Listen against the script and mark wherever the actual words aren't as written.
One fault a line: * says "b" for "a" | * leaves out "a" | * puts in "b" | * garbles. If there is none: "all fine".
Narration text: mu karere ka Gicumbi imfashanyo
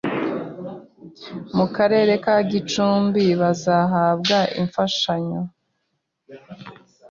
* puts in "bazahabwa"